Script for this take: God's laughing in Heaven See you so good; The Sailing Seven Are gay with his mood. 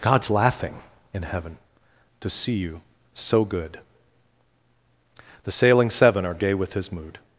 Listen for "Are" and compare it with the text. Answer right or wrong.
right